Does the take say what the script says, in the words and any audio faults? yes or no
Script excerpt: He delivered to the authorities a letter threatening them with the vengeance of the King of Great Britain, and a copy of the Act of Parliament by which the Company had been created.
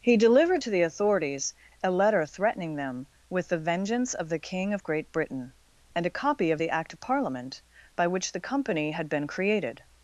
yes